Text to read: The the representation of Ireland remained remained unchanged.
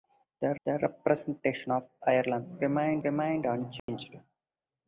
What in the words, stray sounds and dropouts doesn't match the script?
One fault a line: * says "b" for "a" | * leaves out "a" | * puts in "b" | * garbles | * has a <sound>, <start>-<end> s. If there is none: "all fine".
* has a dropout, 3.8-3.9 s